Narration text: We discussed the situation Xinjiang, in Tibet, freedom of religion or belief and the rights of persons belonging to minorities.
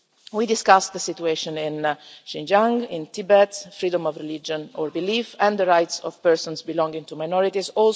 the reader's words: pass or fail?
fail